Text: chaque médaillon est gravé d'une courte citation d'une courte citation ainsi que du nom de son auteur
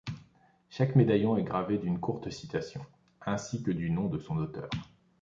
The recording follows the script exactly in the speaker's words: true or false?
false